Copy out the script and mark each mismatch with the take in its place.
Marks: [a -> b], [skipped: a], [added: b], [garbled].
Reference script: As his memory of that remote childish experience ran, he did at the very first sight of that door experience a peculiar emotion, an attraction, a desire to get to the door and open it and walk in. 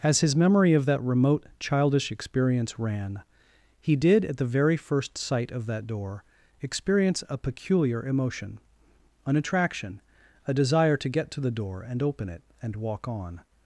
As his memory of that remote childish experience ran, he did at the very first sight of that door experience a peculiar emotion, an attraction, a desire to get to the door and open it and walk [in. -> on]